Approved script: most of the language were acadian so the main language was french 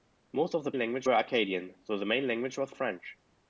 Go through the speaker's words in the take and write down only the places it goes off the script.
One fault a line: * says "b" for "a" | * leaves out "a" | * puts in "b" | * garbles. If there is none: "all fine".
all fine